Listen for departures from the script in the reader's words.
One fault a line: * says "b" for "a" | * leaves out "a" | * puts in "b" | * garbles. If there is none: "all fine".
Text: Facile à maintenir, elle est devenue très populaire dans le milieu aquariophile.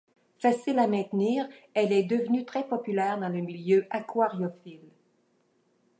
all fine